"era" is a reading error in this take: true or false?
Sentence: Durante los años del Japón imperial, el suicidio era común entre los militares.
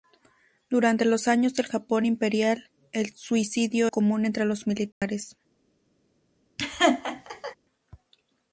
true